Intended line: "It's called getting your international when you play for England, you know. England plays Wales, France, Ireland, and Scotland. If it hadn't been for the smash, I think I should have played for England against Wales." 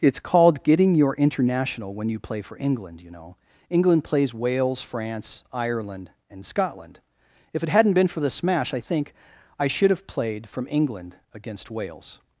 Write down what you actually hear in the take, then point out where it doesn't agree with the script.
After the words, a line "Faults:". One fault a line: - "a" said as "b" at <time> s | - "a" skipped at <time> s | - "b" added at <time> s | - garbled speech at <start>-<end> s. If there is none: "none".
"It's called getting your international when you play for England, you know. England plays Wales, France, Ireland, and Scotland. If it hadn't been for the smash, I think I should have played from England against Wales."
Faults:
- "for" said as "from" at 10.5 s